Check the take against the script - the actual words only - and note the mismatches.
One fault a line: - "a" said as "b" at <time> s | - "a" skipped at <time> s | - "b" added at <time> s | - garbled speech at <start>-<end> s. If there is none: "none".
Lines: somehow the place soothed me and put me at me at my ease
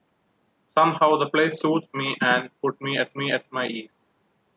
none